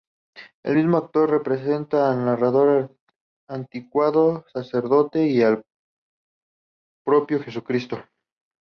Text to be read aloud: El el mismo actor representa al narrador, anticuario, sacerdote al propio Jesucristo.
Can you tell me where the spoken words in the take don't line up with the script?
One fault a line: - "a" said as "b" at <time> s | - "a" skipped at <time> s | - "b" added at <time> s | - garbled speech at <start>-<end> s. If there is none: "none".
- "el" skipped at 0.8 s
- "y" added at 5.3 s